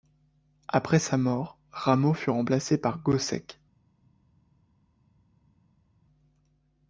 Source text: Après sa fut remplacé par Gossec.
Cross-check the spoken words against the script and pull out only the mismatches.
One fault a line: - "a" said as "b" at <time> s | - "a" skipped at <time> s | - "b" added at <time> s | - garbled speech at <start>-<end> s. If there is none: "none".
- "mort Rameau" added at 1.1 s